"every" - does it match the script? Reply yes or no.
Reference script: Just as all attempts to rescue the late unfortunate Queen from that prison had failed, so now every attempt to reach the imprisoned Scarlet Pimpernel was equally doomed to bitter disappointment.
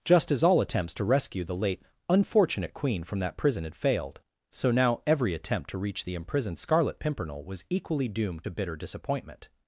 yes